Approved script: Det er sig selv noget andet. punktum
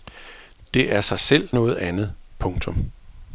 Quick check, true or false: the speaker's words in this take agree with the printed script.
true